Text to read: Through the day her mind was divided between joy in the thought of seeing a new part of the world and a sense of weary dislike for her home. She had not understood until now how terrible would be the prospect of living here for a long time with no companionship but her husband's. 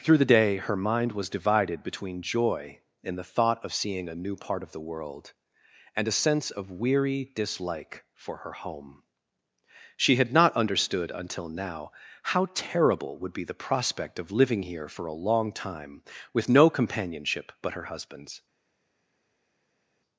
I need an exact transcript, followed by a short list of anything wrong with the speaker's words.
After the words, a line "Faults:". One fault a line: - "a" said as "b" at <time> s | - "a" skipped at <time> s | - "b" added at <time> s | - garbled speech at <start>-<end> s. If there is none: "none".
Through the day her mind was divided between joy in the thought of seeing a new part of the world and a sense of weary dislike for her home. She had not understood until now how terrible would be the prospect of living here for a long time with no companionship but her husband's.
Faults:
none